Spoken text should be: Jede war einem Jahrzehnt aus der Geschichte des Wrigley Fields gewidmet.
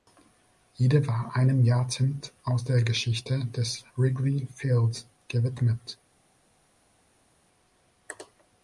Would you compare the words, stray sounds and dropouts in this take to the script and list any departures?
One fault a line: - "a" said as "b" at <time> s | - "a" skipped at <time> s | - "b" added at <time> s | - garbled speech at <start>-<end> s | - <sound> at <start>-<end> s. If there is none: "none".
none